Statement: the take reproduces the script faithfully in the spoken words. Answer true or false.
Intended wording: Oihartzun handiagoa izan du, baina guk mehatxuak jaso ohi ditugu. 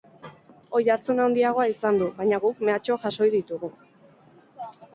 true